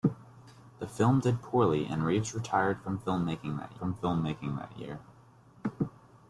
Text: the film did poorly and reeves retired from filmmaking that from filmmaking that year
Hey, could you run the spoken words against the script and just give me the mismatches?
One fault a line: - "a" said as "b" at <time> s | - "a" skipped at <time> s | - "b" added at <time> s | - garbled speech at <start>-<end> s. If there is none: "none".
none